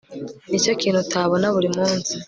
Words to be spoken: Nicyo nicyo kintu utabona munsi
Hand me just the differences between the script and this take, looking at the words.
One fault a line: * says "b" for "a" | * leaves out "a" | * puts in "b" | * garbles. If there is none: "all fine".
* leaves out "nicyo"
* puts in "buri"